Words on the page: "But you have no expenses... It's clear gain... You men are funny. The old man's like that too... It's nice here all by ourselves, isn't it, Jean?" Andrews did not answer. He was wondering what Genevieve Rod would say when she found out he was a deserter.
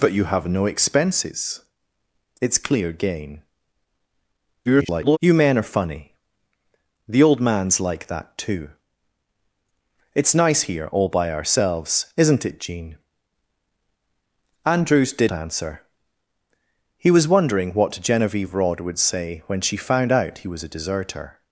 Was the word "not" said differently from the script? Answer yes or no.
yes